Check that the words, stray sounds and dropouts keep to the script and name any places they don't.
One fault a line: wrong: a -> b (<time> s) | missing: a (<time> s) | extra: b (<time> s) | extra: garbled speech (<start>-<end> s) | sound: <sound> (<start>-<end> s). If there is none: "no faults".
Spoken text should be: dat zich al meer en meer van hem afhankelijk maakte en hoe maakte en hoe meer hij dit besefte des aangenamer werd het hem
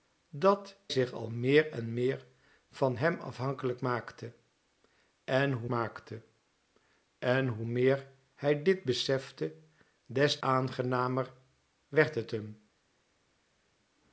no faults